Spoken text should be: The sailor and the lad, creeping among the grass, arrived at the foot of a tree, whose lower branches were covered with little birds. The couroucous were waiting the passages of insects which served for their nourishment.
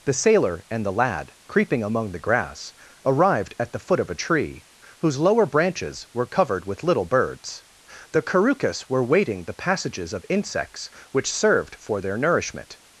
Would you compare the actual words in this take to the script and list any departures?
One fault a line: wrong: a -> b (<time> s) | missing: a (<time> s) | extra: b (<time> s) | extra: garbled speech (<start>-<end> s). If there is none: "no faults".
no faults